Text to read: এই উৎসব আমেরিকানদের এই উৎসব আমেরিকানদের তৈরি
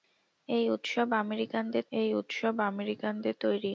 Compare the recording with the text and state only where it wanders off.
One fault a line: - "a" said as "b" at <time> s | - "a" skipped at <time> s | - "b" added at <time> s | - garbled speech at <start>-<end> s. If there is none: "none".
none